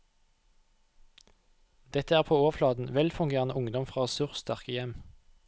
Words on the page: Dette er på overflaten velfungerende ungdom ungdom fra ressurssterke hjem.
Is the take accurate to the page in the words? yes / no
no